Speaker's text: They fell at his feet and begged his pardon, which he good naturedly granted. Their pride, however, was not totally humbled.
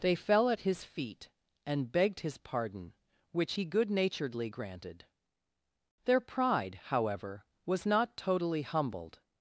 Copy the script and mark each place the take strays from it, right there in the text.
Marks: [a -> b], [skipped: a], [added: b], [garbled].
They fell at his feet and begged his pardon, which he good naturedly granted. Their pride, however, was not totally humbled.